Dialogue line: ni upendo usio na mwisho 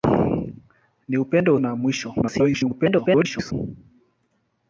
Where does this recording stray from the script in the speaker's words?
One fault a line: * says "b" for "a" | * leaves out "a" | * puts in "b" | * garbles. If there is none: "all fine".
* leaves out "usio"
* garbles